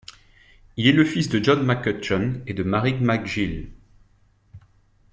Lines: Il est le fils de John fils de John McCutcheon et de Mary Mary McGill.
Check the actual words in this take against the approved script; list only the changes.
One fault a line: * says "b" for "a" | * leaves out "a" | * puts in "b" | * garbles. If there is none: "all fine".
* leaves out "fils de John"
* leaves out "Mary"